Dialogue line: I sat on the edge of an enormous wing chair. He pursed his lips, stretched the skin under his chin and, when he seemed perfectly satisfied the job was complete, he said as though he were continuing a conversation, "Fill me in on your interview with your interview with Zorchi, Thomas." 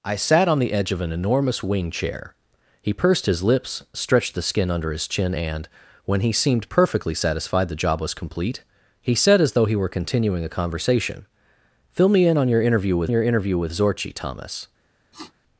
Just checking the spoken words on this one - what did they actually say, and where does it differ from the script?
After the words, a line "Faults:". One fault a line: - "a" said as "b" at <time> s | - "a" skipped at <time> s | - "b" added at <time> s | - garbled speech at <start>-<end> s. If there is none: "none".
I sat on the edge of an enormous wing chair. He pursed his lips, stretched the skin under his chin and, when he seemed perfectly satisfied the job was complete, he said as though he were continuing a conversation, "Fill me in on your interview with your interview with Zorchi, Thomas."
Faults:
none